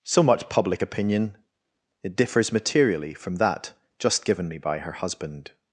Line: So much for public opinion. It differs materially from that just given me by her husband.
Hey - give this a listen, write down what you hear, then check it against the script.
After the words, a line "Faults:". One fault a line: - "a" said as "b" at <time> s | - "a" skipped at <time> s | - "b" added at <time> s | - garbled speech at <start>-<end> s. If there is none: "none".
So much public opinion. It differs materially from that just given me by her husband.
Faults:
- "for" skipped at 0.5 s